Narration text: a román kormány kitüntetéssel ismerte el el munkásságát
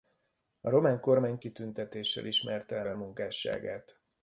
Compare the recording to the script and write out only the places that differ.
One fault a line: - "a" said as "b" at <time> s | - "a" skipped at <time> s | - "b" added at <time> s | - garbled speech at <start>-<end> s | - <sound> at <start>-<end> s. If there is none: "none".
none